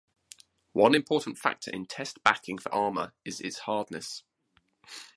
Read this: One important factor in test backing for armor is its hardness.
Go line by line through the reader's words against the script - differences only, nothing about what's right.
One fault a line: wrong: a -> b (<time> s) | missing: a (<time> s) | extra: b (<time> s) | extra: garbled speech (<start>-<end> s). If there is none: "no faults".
no faults